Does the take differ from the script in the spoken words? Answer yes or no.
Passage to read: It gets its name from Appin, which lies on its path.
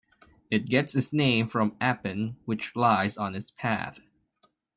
no